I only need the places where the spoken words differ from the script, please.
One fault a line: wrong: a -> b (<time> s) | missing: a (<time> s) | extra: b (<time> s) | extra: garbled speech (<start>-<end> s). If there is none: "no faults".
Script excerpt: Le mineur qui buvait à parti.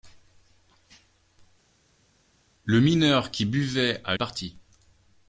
no faults